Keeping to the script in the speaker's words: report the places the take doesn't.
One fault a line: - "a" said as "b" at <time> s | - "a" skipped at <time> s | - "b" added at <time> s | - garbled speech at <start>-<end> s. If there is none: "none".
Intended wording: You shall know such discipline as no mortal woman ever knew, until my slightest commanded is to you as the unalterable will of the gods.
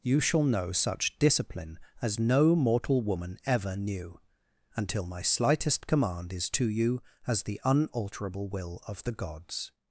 - "commanded" said as "command" at 5.8 s